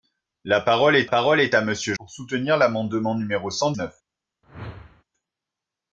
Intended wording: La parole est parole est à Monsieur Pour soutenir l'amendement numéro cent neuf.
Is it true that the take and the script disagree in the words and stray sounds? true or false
true